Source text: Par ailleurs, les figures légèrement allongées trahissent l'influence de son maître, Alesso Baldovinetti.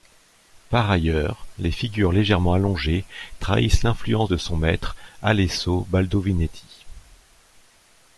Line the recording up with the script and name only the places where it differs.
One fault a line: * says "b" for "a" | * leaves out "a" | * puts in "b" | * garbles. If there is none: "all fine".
all fine